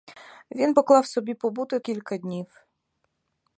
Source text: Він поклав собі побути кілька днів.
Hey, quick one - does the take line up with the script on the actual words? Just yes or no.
yes